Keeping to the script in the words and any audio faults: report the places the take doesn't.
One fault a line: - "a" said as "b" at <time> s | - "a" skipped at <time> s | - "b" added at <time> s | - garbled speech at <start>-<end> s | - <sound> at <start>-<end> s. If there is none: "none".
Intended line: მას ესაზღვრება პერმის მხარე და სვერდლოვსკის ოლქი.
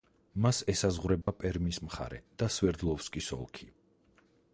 - dropout at 1.2-1.3 s